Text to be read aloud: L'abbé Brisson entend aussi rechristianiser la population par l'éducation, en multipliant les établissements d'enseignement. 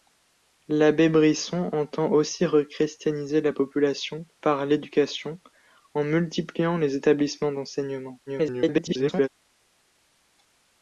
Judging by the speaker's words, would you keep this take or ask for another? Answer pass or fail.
fail